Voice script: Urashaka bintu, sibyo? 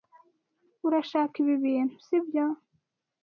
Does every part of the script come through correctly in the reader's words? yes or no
no